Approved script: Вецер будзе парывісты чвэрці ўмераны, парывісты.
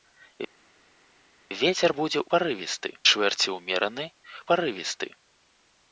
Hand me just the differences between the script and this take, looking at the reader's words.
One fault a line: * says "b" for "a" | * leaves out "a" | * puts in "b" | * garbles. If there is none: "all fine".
all fine